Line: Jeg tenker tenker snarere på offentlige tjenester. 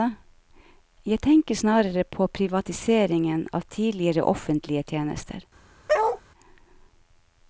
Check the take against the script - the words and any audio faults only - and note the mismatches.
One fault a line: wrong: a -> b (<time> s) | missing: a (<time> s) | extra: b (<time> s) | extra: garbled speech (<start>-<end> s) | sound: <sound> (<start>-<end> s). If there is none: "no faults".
missing: tenker (1.6 s)
extra: privatiseringen av tidligere (2.4 s)
sound: bark (5.9-6.2 s)